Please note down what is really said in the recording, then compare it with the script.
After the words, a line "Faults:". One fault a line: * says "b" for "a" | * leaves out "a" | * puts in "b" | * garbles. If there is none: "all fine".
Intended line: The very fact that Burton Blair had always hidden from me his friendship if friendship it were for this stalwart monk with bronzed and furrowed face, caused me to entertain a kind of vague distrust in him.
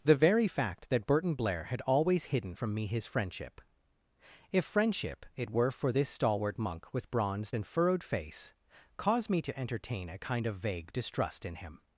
The very fact that Burton Blair had always hidden from me his friendship if friendship it were for this stalwart monk with bronzed and furrowed face, caused me to entertain a kind of vague distrust in him.
Faults:
all fine